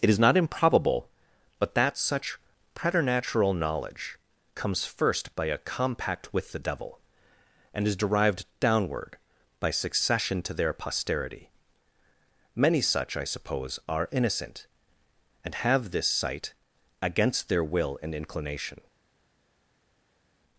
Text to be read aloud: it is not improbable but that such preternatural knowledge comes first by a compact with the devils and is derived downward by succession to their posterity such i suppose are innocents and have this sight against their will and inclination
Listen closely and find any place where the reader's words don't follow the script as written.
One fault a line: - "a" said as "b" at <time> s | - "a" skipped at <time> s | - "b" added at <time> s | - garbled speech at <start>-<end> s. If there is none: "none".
- "devils" said as "devil" at 6.6 s
- "many" added at 12.6 s
- "innocents" said as "innocent" at 14.1 s